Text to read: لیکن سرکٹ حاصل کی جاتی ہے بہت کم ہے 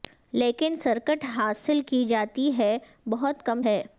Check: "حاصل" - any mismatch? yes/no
no